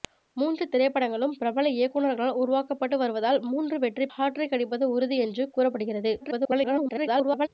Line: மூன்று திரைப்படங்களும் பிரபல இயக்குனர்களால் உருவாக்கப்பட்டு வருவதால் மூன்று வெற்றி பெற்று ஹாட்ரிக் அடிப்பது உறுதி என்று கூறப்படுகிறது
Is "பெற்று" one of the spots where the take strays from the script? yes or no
yes